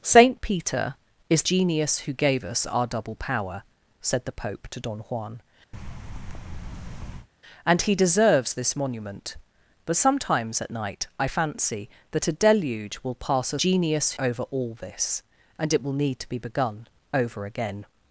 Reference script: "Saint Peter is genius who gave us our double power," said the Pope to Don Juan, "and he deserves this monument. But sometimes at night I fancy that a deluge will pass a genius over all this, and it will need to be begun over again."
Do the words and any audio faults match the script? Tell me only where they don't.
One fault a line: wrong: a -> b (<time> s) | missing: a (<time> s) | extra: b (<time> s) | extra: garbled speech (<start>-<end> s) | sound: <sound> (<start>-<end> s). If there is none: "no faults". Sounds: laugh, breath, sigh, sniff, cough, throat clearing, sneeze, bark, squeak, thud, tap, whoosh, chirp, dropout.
sound: thud (5.7-7.3 s)